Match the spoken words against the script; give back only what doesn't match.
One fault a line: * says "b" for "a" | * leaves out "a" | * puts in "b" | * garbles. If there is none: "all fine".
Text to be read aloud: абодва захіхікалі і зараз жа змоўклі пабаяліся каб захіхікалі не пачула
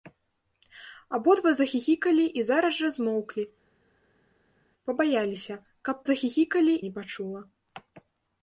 all fine